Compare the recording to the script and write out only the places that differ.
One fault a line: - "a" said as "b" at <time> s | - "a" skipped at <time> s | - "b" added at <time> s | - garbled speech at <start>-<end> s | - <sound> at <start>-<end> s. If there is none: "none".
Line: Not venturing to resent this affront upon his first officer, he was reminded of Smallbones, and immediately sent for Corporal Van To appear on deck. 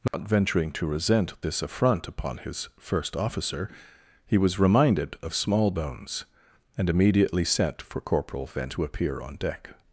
- dropout at 0.1-0.1 s